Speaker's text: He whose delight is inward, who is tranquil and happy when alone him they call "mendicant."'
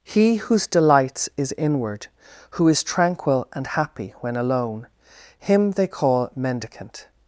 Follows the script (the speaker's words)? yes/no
no